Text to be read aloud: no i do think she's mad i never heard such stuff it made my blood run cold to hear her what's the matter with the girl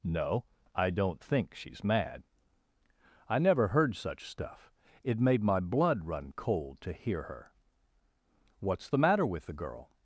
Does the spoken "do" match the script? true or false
false